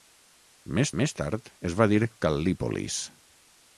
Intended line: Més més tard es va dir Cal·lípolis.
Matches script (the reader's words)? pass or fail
pass